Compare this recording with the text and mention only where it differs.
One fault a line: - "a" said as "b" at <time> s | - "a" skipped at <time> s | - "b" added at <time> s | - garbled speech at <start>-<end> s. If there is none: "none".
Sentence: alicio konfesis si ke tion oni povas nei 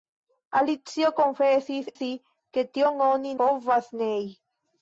none